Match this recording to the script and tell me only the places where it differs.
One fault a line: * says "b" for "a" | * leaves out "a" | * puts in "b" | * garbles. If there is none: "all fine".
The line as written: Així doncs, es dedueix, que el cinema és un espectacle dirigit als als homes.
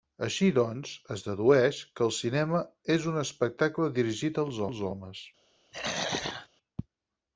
all fine